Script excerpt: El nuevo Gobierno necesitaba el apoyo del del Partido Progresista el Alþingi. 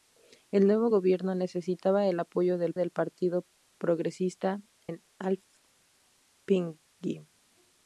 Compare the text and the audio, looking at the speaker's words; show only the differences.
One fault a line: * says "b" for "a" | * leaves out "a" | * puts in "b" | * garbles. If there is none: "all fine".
all fine